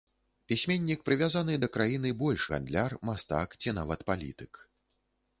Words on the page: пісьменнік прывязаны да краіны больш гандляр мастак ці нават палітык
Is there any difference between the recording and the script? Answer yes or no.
no